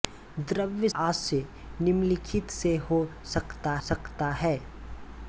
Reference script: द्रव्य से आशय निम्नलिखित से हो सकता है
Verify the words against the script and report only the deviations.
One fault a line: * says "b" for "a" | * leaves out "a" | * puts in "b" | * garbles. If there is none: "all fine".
* leaves out "से"
* puts in "सकता"